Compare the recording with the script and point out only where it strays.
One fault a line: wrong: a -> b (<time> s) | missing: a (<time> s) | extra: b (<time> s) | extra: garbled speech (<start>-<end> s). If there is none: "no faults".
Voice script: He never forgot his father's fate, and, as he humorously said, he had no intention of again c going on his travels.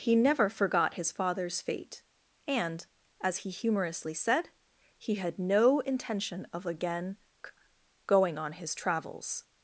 missing: c (7.2 s)